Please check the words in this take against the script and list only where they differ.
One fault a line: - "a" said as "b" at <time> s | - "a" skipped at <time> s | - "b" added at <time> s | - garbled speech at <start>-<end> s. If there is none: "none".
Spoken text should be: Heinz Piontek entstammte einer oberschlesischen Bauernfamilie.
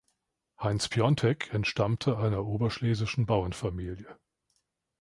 none